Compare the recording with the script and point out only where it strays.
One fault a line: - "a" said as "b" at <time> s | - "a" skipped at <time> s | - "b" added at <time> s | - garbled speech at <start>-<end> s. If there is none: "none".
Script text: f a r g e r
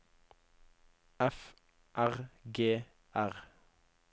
- "a" skipped at 1.5 s
- "e" skipped at 2.8 s